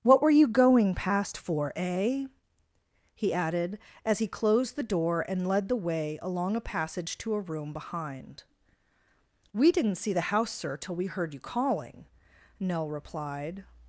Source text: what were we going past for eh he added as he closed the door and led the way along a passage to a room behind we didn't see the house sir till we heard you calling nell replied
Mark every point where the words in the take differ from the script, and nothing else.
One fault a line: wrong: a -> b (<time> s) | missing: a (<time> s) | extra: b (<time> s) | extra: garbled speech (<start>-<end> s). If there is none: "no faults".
wrong: we -> you (0.3 s)